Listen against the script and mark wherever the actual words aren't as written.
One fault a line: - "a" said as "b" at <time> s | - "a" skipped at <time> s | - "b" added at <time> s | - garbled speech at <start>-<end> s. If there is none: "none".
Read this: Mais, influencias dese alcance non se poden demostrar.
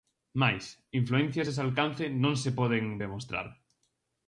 none